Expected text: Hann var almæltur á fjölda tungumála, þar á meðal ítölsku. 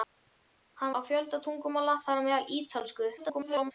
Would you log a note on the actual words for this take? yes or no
yes